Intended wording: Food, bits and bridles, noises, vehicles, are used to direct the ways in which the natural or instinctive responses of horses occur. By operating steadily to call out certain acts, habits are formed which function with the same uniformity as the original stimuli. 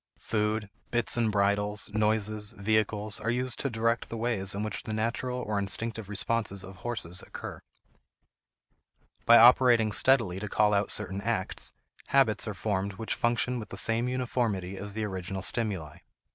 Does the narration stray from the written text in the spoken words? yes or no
no